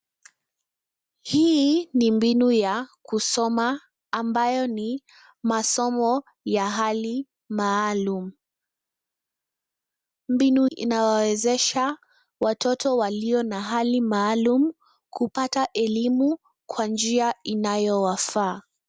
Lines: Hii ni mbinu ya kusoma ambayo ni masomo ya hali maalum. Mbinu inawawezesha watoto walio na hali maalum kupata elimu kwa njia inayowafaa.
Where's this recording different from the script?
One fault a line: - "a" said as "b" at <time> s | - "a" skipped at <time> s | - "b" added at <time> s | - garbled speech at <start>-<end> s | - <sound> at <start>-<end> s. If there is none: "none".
none